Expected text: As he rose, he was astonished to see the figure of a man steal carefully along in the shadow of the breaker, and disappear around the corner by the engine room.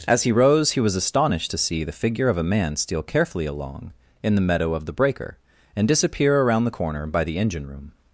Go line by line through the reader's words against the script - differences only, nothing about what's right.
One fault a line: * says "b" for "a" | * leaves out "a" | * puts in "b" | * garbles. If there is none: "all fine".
* says "meadow" for "shadow"